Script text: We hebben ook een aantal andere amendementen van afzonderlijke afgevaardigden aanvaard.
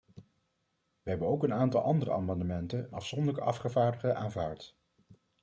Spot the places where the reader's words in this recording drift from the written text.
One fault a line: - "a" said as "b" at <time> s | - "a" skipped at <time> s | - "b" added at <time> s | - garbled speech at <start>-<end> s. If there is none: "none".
- "van" skipped at 2.9 s